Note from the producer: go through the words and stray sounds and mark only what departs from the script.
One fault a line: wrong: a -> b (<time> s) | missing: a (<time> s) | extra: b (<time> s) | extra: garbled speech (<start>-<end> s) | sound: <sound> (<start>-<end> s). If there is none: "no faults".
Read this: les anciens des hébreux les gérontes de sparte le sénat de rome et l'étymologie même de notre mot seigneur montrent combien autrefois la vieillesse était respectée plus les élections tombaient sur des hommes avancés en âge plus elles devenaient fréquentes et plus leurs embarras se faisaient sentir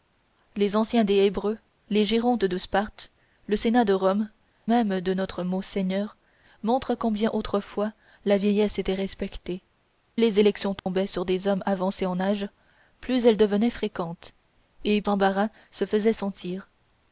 missing: et l'étymologie (4.3 s)
missing: plus (9.6 s)
sound: dropout (10.8-10.9 s)
missing: plus leurs (15.0 s)